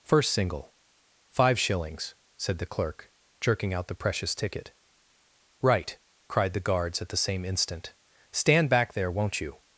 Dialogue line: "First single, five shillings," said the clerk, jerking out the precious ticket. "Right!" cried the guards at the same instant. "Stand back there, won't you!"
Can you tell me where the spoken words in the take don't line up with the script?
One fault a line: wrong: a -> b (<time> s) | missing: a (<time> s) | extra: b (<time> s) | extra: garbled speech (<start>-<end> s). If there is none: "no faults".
no faults